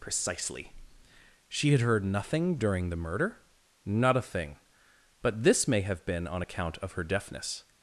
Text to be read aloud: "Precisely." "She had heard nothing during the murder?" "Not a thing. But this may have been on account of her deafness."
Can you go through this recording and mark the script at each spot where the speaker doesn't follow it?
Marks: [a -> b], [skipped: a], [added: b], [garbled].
"Precisely." "She had heard nothing during the murder?" "Not a thing. But this may have been on account of her deafness."